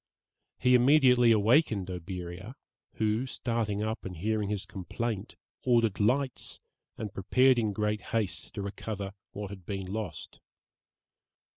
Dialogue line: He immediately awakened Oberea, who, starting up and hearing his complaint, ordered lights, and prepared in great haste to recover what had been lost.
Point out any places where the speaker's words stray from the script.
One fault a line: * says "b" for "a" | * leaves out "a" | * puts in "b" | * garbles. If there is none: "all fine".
all fine